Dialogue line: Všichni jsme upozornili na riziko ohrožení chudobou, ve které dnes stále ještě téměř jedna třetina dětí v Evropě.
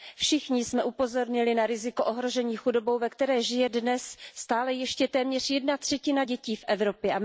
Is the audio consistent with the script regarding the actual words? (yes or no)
no